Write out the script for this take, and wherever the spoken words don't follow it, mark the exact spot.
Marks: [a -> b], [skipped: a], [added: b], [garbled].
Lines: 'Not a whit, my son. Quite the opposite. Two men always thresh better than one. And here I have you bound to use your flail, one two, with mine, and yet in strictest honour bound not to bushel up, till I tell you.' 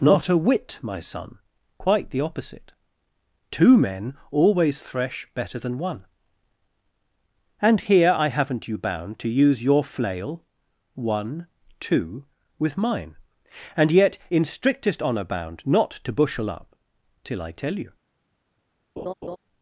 'Not a whit, my son. Quite the opposite. Two men always thresh better than one. And here I [have -> haven't] you bound to use your flail, one two, with mine, and yet in strictest honour bound not to bushel up, till I tell you.'